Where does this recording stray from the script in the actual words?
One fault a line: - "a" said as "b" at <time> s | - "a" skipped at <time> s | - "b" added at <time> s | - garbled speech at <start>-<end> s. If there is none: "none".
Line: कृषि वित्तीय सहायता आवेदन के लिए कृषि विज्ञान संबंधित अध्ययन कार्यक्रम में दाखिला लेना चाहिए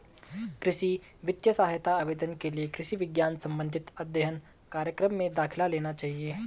none